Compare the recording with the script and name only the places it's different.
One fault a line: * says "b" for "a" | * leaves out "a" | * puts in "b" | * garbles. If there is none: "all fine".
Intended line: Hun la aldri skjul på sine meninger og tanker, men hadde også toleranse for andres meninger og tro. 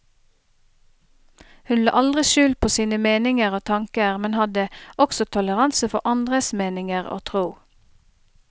all fine